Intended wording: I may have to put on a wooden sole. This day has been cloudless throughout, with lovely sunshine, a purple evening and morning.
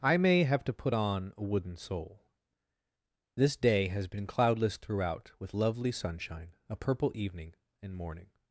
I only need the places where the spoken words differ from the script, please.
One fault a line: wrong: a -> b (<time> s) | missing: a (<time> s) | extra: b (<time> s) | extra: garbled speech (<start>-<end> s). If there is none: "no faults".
no faults